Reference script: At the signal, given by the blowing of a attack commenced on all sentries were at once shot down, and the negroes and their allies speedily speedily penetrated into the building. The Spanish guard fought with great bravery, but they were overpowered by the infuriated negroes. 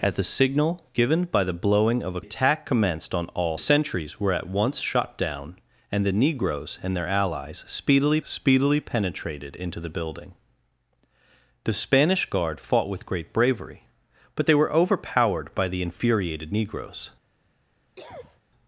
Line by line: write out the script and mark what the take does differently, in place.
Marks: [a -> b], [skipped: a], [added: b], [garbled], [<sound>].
At the signal, given by the blowing of a attack commenced on all sentries were at once shot down, and the negroes and their allies speedily speedily penetrated into the building. The Spanish guard fought with great bravery, but they were overpowered by the infuriated negroes. [cough]